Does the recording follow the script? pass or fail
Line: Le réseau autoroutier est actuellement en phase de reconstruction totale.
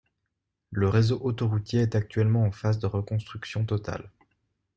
pass